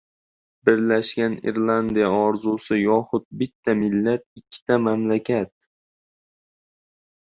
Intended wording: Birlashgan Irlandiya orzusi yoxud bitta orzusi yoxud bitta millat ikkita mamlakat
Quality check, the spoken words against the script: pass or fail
fail